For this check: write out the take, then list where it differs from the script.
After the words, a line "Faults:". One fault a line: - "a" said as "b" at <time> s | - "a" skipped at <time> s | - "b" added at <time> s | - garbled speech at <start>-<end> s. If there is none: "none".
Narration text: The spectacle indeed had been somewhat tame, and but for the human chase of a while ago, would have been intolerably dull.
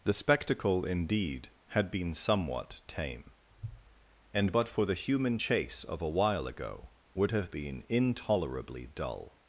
The spectacle indeed had been somewhat tame, and but for the human chase of a while ago, would have been intolerably dull.
Faults:
none